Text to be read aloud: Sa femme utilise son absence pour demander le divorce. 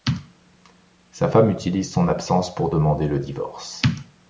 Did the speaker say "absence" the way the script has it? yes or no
yes